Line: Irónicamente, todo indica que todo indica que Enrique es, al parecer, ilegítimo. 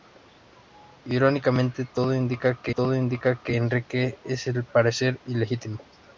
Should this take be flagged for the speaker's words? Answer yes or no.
no